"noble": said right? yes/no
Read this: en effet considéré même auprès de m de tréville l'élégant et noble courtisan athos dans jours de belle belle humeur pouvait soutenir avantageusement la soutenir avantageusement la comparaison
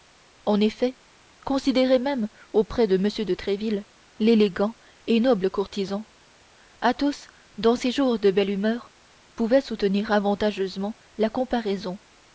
yes